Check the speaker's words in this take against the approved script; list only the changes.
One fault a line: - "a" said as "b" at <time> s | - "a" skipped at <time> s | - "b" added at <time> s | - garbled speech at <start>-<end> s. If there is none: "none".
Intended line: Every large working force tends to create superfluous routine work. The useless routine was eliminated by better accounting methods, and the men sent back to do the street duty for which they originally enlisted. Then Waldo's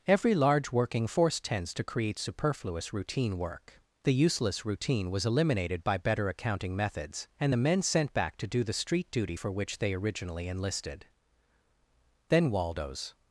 none